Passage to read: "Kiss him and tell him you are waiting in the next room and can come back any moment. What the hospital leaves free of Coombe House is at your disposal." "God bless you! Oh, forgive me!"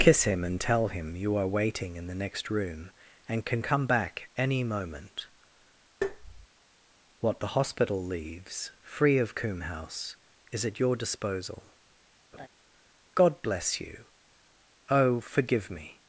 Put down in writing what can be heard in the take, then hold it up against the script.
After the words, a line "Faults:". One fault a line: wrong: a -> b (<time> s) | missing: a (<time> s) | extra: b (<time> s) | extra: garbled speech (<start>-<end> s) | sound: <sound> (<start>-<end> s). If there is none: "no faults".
"Kiss him and tell him you are waiting in the next room and can come back any moment. What the hospital leaves free of Coombe House is at your disposal." "God bless you! Oh, forgive me!"
Faults:
sound: tap (6.0-6.5 s)
sound: laugh (12.3-12.5 s)